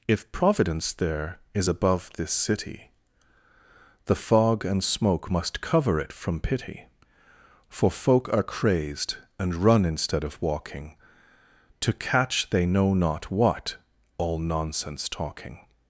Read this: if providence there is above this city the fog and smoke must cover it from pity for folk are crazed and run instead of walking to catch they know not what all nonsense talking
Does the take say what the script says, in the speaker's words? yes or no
yes